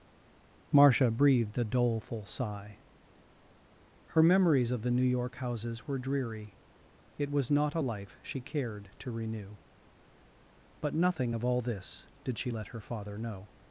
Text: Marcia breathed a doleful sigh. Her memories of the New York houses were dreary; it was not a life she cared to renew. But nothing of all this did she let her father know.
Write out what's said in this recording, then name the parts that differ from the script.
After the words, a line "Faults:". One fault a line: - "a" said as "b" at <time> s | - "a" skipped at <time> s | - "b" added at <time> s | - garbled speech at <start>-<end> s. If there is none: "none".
Marcia breathed a doleful sigh. Her memories of the New York houses were dreary; it was not a life she cared to renew. But nothing of all this did she let her father know.
Faults:
none